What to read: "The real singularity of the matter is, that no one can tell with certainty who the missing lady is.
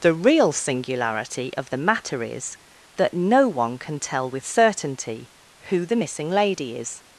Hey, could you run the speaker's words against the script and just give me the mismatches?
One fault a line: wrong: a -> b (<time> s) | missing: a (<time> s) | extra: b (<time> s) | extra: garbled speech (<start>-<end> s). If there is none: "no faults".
no faults